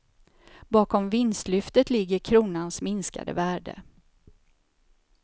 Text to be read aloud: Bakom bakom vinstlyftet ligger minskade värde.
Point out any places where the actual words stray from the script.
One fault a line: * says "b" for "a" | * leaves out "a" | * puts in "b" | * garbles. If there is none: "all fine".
* leaves out "bakom"
* puts in "kronans"